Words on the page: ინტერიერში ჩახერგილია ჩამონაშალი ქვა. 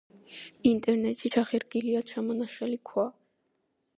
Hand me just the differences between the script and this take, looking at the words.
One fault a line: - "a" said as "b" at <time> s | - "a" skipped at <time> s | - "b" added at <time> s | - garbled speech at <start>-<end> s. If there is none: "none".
none